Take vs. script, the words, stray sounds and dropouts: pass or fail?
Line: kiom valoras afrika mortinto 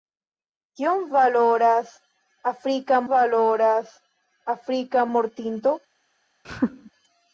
fail